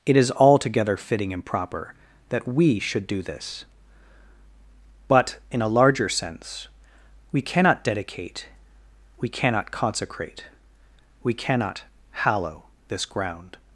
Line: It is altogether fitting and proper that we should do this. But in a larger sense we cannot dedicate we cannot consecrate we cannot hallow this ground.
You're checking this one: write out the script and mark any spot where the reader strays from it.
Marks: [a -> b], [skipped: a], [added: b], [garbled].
It is altogether fitting and proper that we should do this. But in a larger sense we cannot dedicate we cannot consecrate we cannot hallow this ground.